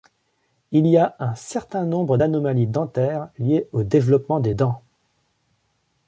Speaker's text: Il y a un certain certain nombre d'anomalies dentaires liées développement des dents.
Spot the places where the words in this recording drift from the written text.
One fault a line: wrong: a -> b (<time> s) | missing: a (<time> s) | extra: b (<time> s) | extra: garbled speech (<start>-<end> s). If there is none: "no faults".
missing: certain (1.8 s)
extra: au (3.7 s)